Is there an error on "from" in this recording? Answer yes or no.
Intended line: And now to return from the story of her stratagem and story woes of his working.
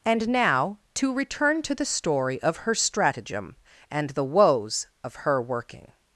yes